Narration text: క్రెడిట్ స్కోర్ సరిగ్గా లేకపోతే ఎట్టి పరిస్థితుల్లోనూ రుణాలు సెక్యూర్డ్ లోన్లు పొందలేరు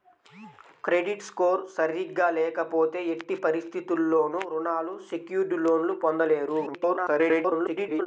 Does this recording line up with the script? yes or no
no